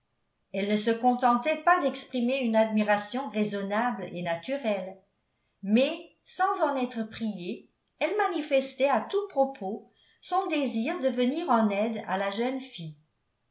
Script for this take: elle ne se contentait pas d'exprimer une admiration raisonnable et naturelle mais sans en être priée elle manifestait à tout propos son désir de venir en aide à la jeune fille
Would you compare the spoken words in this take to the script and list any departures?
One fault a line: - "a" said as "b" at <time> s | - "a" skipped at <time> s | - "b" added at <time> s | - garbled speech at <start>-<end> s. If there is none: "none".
none